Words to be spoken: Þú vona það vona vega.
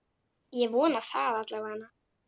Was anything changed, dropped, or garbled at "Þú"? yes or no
yes